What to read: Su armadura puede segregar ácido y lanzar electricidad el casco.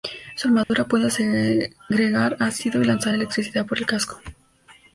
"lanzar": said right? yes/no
yes